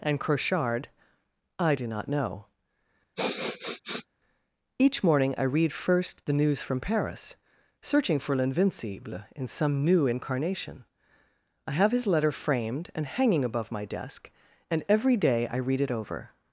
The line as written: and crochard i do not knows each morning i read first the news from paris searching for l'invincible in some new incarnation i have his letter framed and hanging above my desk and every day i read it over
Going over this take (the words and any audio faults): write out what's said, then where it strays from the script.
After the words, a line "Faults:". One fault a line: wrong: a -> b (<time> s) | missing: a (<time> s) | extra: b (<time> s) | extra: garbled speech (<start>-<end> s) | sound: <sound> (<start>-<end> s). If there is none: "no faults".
and crochard i do not know each morning i read first the news from paris searching for l'invincible in some new incarnation i have his letter framed and hanging above my desk and every day i read it over
Faults:
wrong: knows -> know (2.1 s)
sound: sniff (3.2-4.1 s)